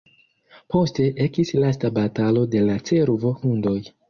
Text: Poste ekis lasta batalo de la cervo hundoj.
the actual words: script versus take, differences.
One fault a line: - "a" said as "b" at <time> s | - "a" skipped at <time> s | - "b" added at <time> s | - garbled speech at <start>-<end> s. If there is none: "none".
none